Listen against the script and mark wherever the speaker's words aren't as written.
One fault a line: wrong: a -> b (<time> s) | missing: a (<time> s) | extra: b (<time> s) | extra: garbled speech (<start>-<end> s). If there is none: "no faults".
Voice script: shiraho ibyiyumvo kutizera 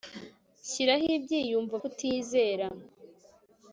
no faults